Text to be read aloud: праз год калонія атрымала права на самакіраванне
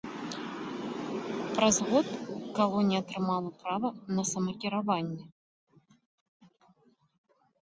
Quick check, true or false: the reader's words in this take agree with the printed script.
true